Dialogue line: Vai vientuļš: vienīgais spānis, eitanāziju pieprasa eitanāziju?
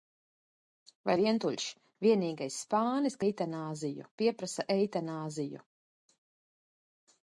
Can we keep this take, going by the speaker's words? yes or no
yes